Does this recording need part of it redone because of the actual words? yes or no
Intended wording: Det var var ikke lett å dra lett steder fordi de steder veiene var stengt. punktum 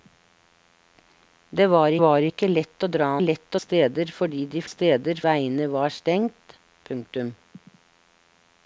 no